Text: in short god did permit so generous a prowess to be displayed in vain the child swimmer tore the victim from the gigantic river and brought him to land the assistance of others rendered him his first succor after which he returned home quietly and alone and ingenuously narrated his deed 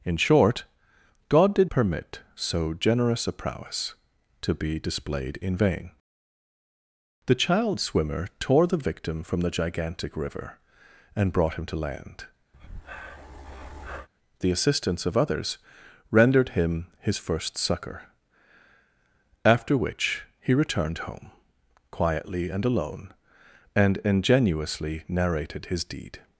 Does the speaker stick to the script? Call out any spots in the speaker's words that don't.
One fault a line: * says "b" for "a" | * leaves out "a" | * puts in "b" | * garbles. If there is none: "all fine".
all fine